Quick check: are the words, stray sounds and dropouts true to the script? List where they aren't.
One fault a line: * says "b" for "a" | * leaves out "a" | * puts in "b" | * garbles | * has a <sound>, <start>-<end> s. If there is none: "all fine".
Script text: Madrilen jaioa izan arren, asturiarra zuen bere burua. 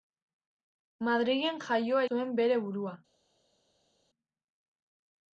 * leaves out "izan arren asturiarra"